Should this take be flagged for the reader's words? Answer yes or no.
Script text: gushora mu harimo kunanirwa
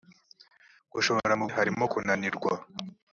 no